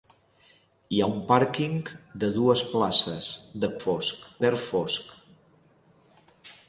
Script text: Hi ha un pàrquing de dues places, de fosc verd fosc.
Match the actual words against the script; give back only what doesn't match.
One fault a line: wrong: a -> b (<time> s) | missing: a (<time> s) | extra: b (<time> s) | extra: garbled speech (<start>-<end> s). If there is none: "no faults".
no faults